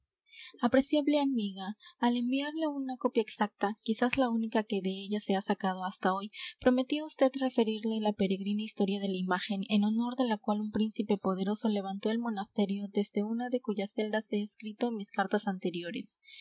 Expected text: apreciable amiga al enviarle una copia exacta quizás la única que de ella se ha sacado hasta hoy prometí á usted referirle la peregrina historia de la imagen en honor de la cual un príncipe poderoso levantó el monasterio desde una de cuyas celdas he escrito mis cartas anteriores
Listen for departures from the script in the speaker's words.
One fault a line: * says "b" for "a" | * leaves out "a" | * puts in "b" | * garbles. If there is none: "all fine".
all fine